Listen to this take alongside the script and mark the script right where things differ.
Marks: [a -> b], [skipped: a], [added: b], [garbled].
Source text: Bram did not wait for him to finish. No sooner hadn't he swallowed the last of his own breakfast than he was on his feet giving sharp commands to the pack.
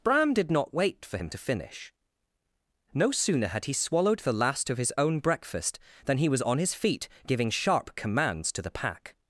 Bram did not wait for him to finish. No sooner [hadn't -> had] he swallowed the last of his own breakfast than he was on his feet giving sharp commands to the pack.